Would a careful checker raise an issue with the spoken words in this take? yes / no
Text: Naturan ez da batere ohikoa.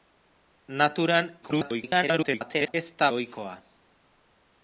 yes